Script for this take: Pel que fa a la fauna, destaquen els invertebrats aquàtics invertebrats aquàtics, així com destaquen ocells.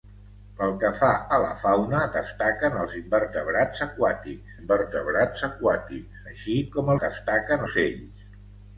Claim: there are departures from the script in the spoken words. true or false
false